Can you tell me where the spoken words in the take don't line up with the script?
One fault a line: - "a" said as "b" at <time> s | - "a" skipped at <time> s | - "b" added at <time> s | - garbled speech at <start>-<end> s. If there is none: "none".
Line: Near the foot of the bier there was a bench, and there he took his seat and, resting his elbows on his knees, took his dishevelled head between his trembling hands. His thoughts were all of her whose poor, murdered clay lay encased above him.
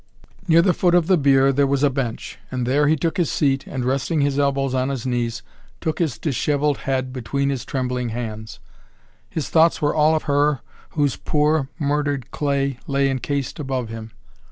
none